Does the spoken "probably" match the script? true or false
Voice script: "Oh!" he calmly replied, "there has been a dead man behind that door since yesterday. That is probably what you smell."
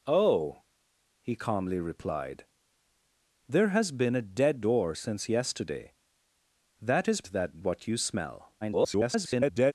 false